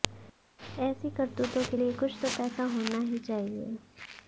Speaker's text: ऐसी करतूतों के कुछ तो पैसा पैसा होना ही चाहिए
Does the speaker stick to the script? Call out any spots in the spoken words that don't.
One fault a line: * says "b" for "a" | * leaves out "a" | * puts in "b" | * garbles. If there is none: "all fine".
* puts in "लिए"
* leaves out "पैसा"